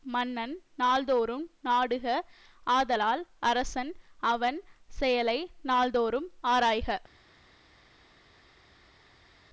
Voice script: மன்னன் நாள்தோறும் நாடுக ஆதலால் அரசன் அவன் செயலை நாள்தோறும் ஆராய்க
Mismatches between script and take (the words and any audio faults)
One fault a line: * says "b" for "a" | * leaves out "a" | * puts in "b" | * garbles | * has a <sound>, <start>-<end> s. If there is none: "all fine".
all fine